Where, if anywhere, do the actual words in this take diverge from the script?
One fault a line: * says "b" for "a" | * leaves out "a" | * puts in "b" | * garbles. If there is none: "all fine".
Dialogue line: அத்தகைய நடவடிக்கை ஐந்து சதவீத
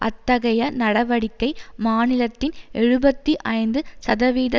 * puts in "மாநிலத்தின் எழுபத்தி"